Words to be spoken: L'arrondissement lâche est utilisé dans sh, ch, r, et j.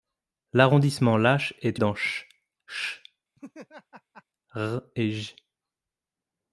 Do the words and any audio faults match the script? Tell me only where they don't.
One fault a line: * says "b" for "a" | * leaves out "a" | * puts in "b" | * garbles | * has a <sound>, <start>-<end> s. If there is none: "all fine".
* leaves out "utilisé"
* has a laugh, 3.4-4.2 s